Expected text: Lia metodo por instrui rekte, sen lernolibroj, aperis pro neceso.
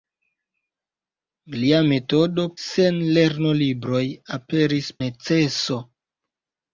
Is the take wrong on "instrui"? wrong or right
wrong